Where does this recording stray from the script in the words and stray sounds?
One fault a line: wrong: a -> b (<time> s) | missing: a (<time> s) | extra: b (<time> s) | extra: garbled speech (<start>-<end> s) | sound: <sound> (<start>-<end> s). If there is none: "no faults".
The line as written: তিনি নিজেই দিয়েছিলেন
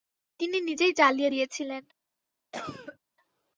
extra: জ্বালিয়ে (1.0 s)
sound: cough (2.5-3.0 s)